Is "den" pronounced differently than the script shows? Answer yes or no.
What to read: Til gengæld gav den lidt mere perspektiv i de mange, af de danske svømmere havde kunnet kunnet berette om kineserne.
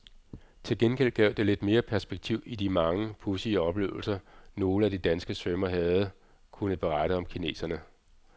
yes